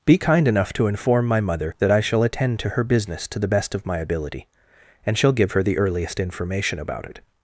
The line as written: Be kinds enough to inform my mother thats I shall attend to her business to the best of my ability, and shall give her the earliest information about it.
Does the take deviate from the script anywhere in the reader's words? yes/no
yes